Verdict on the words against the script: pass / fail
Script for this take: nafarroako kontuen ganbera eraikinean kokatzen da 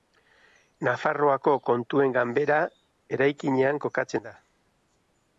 pass